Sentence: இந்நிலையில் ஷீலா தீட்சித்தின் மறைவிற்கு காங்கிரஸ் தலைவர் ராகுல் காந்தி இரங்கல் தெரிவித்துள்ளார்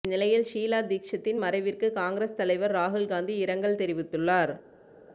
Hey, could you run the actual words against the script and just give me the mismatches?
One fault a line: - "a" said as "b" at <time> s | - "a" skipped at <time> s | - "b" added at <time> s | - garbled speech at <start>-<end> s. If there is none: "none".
none